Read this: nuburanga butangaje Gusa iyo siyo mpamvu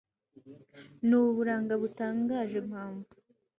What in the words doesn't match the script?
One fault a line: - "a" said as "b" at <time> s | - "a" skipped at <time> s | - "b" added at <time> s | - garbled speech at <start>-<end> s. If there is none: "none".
- "Gusa iyo siyo" skipped at 2.6 s